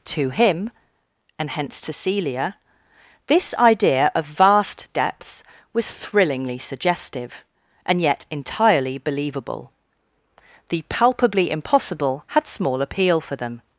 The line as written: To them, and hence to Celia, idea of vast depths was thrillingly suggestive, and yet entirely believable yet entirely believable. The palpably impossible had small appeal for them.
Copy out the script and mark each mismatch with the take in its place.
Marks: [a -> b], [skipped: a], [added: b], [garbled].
To [them, -> him] and hence to Celia, [added: this] idea of vast depths was thrillingly suggestive, and yet entirely believable [skipped: yet entirely believable.] The palpably impossible had small appeal for them.